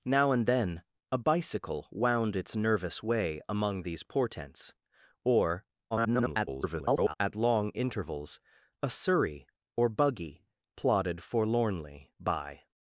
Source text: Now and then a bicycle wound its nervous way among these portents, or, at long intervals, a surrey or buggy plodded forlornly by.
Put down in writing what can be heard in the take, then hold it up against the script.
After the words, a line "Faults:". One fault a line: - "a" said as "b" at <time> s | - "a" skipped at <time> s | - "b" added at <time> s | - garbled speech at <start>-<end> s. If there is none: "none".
Now and then a bicycle wound its nervous way among these portents, or, [garbled] at long intervals, a surrey or buggy plodded forlornly by.
Faults:
- garbled speech at 5.9-7.1 s